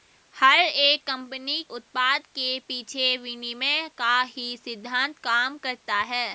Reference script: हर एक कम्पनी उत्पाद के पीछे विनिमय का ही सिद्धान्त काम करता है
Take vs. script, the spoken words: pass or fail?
pass